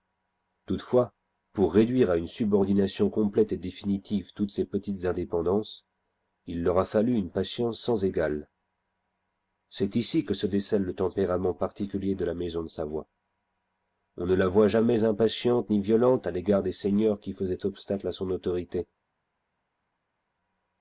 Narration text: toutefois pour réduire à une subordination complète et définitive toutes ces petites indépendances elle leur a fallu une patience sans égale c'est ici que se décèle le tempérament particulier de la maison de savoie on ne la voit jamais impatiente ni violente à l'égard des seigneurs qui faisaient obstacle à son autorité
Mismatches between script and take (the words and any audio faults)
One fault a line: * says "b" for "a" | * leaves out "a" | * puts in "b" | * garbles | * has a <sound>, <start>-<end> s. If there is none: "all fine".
* says "il" for "elle"